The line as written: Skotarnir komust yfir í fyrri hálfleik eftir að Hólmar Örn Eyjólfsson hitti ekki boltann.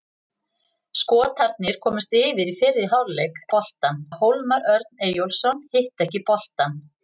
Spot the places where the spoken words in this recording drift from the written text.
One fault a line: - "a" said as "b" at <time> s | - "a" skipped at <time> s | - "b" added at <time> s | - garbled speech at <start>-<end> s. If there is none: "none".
- "eftir" said as "boltann" at 3.6 s